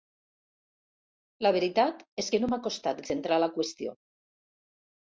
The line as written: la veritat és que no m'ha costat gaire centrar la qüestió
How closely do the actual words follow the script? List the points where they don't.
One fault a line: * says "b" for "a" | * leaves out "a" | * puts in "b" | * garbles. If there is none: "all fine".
* leaves out "gaire"